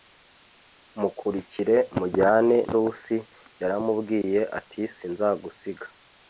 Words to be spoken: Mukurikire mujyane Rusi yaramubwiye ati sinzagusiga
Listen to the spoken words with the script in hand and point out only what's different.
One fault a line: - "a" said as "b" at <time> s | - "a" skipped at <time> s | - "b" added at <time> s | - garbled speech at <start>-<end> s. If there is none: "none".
none